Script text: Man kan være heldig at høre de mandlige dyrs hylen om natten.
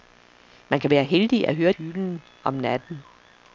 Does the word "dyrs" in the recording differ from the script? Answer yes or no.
yes